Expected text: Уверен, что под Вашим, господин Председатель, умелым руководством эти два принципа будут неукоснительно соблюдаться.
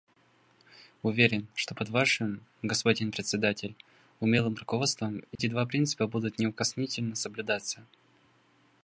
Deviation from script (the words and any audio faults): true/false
true